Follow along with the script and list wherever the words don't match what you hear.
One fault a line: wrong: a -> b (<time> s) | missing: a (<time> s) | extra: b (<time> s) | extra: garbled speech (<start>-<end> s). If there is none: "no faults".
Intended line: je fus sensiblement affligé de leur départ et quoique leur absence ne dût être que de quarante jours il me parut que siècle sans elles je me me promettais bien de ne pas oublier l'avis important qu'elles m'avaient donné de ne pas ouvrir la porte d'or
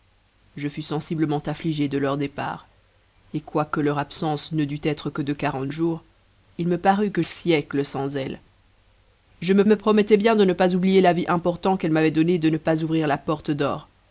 no faults